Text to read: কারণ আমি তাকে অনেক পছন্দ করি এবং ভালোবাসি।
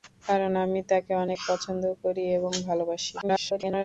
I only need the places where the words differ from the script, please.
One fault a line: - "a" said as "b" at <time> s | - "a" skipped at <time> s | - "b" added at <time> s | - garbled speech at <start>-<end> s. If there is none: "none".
- garbled speech at 3.2-3.8 s